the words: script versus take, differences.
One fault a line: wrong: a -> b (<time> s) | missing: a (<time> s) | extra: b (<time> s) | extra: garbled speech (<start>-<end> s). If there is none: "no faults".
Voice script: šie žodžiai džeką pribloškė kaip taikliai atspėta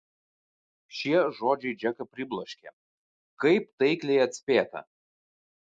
no faults